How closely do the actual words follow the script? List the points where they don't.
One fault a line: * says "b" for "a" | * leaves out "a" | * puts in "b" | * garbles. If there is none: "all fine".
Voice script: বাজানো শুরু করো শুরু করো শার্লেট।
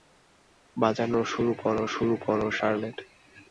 all fine